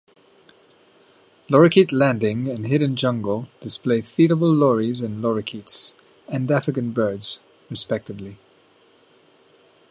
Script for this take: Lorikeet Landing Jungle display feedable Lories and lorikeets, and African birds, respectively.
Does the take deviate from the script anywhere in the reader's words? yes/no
yes